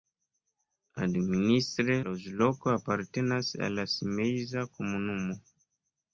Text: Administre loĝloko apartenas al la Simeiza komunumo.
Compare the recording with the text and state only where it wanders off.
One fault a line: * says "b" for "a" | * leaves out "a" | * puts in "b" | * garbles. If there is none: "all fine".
all fine